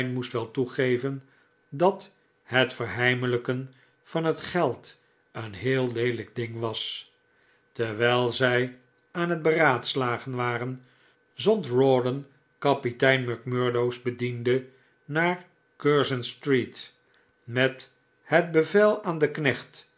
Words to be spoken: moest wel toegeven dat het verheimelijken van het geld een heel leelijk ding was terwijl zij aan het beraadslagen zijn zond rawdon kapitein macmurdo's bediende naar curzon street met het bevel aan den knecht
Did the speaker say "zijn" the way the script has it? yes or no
no